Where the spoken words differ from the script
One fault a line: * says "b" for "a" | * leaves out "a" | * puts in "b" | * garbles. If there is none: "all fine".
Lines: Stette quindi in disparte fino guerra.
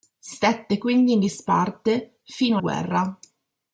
all fine